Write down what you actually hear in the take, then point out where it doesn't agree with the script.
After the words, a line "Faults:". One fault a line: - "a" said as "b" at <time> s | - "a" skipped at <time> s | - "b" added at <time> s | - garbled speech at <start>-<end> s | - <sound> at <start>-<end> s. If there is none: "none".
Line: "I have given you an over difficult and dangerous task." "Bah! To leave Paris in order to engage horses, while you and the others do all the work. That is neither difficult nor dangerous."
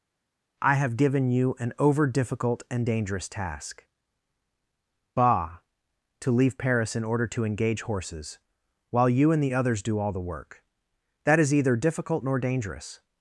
"I have given you an over difficult and dangerous task." "Bah! To leave Paris in order to engage horses, while you and the others do all the work. That is either difficult nor dangerous."
Faults:
- "neither" said as "either" at 11.5 s